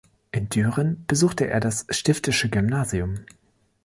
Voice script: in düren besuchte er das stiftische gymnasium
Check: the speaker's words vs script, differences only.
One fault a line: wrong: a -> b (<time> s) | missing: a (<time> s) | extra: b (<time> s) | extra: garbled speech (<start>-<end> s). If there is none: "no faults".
no faults